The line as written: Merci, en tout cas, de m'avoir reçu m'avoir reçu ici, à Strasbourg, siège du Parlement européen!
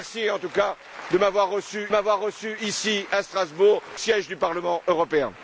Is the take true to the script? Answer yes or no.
yes